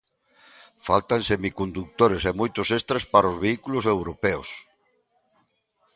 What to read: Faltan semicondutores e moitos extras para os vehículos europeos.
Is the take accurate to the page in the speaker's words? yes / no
yes